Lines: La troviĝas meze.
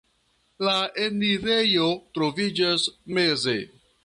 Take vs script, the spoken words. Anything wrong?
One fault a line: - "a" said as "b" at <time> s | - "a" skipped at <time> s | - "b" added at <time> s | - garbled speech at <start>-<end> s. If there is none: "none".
- "enirejo" added at 1.0 s